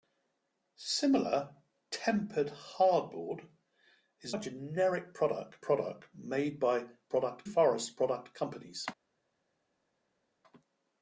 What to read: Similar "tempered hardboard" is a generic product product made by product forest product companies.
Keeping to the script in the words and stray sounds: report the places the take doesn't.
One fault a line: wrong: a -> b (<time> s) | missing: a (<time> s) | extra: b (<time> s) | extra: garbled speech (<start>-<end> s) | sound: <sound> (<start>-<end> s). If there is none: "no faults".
no faults